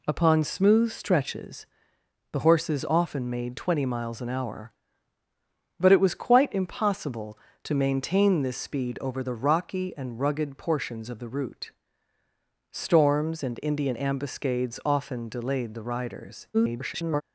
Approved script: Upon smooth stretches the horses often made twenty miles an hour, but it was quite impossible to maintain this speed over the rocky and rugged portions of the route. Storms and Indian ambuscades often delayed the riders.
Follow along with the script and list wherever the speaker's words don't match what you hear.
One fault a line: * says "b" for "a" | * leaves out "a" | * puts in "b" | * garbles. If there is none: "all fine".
* garbles